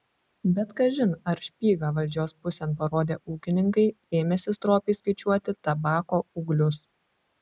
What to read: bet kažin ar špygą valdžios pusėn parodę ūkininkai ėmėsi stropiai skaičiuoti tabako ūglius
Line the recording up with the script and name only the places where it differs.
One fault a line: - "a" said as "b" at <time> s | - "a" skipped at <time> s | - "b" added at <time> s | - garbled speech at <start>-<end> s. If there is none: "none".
none